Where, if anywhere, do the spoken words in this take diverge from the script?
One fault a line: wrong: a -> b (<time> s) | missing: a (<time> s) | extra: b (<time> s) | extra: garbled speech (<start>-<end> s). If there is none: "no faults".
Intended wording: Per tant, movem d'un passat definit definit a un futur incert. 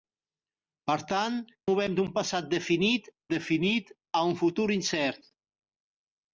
no faults